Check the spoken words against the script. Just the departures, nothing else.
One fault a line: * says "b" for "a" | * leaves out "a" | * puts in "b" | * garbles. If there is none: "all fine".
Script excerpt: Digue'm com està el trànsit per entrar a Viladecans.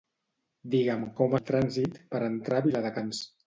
* leaves out "està"